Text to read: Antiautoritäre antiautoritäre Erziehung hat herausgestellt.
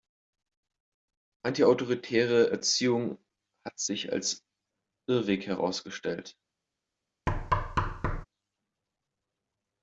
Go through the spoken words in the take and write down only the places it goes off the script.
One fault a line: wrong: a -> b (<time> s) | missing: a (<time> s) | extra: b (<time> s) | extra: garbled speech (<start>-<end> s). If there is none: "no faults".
missing: antiautoritäre (2.5 s)
extra: sich als Irrweg (3.8 s)